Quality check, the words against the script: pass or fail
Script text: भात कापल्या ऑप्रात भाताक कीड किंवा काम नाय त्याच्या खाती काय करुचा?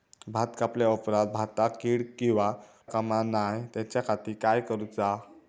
pass